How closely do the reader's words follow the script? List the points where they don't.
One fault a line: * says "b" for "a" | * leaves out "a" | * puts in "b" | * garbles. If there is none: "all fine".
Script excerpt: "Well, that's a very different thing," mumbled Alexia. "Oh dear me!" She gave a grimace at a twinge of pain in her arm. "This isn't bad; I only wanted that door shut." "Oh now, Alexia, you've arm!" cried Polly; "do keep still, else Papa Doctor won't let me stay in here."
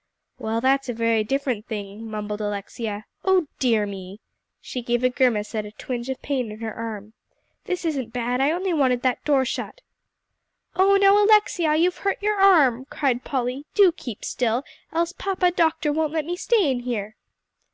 * puts in "hurt your"